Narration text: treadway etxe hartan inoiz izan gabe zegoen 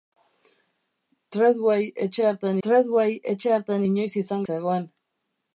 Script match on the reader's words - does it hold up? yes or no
no